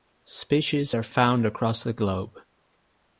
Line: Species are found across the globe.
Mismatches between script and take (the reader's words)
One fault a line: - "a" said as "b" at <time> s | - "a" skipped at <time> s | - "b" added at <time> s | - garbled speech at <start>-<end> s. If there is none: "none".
none